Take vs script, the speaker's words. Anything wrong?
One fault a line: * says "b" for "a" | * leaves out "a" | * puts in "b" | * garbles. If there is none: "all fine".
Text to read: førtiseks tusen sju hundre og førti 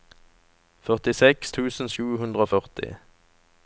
all fine